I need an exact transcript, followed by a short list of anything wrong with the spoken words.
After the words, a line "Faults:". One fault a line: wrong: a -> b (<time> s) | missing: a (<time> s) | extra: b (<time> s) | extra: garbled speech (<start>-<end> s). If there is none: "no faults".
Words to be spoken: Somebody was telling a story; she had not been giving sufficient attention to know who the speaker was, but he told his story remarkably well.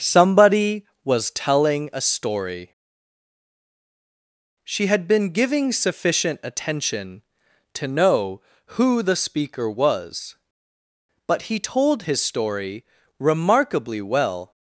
Somebody was telling a story; she had been giving sufficient attention to know who the speaker was, but he told his story remarkably well.
Faults:
missing: not (5.1 s)